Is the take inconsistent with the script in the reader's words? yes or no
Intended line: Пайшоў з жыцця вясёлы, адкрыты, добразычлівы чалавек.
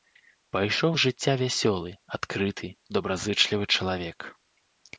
no